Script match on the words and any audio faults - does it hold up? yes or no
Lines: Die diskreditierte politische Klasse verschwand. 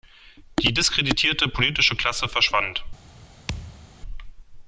no